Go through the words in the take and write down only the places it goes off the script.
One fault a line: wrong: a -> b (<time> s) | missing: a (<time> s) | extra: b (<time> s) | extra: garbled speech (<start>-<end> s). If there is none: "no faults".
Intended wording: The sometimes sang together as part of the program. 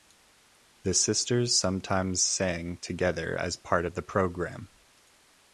extra: sisters (0.9 s)